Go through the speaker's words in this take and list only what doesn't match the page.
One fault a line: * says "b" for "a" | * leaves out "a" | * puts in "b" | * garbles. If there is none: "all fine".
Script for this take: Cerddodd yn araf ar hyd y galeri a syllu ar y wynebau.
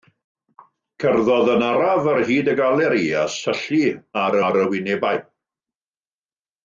* puts in "ar"